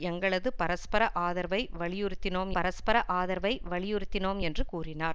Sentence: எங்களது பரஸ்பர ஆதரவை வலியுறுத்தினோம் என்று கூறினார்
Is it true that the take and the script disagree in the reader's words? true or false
true